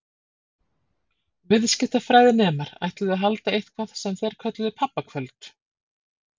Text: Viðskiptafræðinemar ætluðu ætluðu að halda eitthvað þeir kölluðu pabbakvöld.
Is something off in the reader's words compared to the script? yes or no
yes